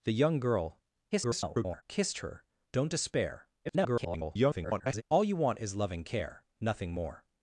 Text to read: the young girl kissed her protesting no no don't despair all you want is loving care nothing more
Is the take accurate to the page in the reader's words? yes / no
no